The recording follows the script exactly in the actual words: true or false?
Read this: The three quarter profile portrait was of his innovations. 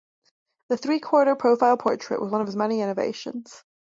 false